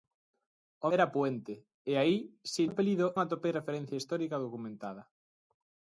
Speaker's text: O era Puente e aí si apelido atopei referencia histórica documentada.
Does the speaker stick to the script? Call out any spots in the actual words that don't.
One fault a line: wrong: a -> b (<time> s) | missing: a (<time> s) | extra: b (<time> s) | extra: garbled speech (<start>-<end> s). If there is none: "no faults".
no faults